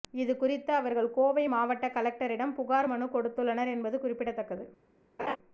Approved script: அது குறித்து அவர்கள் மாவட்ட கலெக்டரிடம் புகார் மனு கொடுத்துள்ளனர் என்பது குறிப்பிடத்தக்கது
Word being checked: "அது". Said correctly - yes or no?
no